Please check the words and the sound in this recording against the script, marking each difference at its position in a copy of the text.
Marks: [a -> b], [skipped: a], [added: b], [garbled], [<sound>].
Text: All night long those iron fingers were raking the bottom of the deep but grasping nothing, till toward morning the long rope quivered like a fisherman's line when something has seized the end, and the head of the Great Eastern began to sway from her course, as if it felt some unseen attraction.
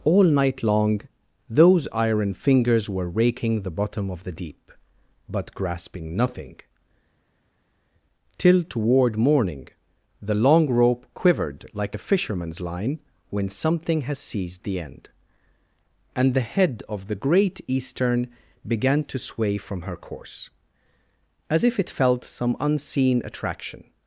All night long those iron fingers were raking the bottom of the deep but grasping nothing, till toward morning the long rope quivered like a fisherman's line when something has seized the end, and the head of the Great Eastern began to sway from her course, as if it felt some unseen attraction.